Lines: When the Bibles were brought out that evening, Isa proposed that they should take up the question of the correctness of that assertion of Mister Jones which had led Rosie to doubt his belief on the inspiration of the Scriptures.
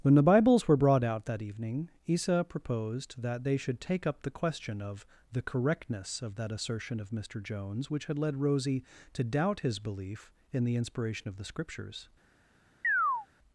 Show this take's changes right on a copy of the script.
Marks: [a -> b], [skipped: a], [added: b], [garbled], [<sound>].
When the Bibles were brought out that evening, Isa proposed that they should take up the question of the correctness of that assertion of Mister Jones which had led Rosie to doubt his belief [on -> in] the inspiration of the Scriptures. [chirp]